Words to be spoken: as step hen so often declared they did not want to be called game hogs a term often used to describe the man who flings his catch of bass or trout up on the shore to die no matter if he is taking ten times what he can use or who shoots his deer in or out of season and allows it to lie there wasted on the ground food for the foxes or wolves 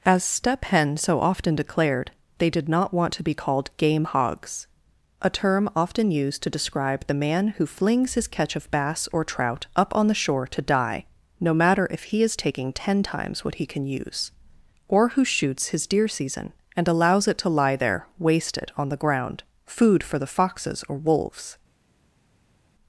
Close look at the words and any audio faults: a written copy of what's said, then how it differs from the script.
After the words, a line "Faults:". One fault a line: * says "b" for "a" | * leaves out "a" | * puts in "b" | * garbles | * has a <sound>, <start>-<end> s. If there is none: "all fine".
as step hen so often declared they did not want to be called game hogs a term often used to describe the man who flings his catch of bass or trout up on the shore to die no matter if he is taking ten times what he can use or who shoots his deer season and allows it to lie there wasted on the ground food for the foxes or wolves
Faults:
* leaves out "in or out of"